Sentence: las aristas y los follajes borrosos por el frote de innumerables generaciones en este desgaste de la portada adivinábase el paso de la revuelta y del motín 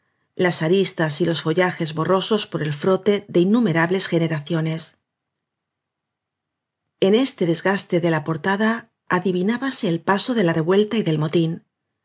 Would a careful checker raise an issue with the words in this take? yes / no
no